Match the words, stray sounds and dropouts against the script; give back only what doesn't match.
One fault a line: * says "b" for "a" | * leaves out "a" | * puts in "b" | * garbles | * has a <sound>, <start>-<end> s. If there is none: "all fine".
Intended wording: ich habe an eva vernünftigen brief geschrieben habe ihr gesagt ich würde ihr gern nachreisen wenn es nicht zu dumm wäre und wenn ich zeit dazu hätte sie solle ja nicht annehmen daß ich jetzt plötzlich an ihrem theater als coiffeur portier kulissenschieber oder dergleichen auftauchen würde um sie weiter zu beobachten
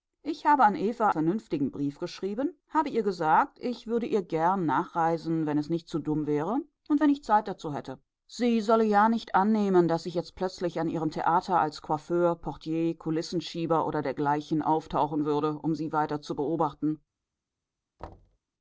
* has a thud, 18.0-18.4 s